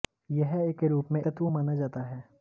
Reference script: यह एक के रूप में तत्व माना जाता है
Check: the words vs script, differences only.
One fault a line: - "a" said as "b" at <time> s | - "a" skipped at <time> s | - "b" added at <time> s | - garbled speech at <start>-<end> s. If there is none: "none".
none